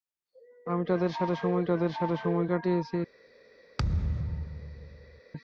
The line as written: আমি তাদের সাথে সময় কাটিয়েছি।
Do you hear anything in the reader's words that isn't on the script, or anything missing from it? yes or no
yes